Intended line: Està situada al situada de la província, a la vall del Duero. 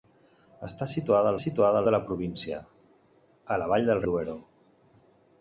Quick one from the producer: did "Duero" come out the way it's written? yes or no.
yes